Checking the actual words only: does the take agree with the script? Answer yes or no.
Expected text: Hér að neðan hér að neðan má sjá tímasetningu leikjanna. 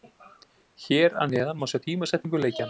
no